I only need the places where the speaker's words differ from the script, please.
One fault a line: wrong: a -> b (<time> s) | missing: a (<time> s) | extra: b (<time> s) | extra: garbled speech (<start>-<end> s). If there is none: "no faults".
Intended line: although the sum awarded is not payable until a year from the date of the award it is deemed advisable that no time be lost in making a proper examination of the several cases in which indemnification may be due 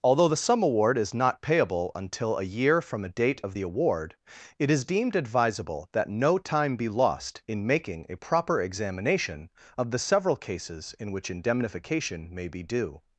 wrong: awarded -> award (0.6 s)
wrong: the -> a (3.0 s)